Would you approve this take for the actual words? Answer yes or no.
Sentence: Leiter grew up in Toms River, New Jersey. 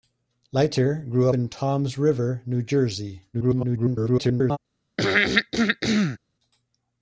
no